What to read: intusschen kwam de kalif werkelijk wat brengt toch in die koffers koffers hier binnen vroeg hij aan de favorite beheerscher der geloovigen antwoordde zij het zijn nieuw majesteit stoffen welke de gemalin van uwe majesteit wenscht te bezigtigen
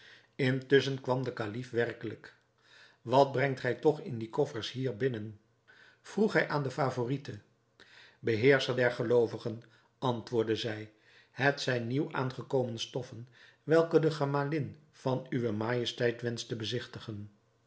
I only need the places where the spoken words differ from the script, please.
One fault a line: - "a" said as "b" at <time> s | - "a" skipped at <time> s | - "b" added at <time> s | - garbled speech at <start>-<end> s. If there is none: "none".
- "gij" added at 3.6 s
- "koffers" skipped at 4.7 s
- "majesteit" said as "aangekomen" at 12.1 s